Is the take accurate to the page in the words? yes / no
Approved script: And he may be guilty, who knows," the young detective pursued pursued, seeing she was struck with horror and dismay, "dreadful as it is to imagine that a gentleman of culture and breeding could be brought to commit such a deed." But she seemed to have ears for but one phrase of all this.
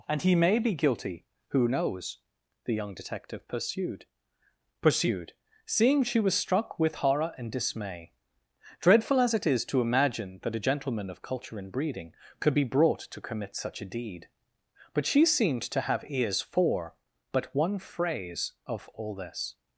yes